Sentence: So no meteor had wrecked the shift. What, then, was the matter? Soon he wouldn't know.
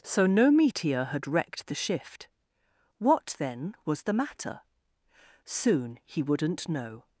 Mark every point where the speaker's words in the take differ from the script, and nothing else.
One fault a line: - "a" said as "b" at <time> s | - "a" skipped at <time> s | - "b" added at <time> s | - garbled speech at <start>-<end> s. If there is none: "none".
none